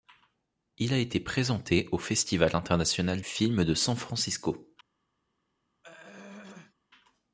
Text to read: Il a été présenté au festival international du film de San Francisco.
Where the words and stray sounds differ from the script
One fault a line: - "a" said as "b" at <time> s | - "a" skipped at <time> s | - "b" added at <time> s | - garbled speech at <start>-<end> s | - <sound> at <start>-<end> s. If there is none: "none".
- "du" skipped at 3.2 s
- throat clearing at 5.8-6.7 s